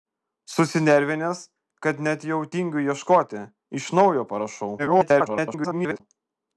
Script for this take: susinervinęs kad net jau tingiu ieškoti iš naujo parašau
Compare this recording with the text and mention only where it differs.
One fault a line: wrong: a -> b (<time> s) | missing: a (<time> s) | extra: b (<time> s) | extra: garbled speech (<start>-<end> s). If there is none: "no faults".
extra: garbled speech (4.8-6.0 s)